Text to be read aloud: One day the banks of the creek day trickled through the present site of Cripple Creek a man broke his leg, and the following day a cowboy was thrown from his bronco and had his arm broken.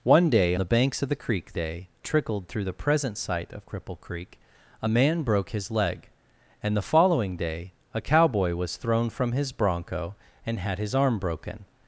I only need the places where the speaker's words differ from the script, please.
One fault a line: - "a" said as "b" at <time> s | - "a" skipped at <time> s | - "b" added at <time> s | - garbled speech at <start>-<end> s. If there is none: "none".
none